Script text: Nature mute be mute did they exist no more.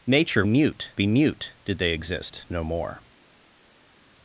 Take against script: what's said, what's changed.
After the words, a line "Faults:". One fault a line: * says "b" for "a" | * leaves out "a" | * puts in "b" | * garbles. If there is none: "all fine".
Nature mute be mute did they exist no more.
Faults:
all fine